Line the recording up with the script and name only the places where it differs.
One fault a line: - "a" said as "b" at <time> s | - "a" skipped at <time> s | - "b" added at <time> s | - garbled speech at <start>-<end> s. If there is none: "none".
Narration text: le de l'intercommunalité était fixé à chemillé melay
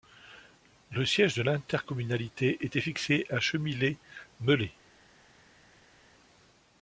- "siège" added at 1.1 s